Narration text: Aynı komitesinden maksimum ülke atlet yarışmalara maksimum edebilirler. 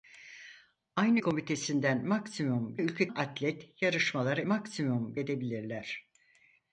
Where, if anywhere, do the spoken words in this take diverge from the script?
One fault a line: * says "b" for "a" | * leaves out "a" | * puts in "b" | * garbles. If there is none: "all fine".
all fine